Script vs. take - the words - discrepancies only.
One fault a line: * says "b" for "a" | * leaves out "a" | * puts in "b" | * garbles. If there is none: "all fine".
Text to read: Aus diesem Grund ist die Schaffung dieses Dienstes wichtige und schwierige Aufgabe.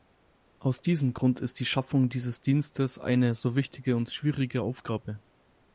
* puts in "eine so"